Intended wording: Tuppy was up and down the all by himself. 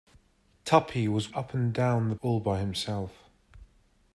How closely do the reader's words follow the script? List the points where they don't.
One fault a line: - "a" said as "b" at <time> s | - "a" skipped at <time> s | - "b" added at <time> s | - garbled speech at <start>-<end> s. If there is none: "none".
none